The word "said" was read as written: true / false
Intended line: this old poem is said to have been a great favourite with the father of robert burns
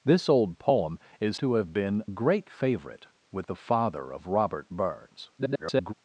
false